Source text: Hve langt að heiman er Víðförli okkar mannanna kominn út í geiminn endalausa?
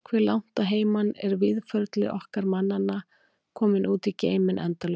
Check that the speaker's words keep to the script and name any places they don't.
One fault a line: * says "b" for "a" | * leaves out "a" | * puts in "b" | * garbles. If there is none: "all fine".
all fine